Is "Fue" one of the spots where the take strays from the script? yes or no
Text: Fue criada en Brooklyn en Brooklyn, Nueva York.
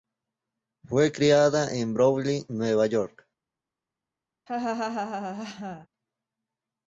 no